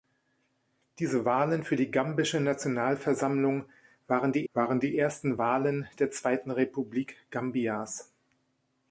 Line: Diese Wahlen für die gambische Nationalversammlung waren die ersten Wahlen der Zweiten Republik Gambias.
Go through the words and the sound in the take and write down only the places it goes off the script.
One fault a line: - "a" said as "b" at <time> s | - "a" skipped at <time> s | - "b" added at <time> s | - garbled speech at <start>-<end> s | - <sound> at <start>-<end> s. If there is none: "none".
- "waren die" added at 4.5 s